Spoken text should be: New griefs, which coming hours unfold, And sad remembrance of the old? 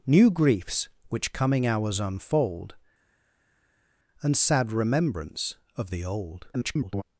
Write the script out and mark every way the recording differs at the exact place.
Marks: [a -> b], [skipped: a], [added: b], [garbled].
New griefs, which coming hours unfold, And sad remembrance of the old? [garbled]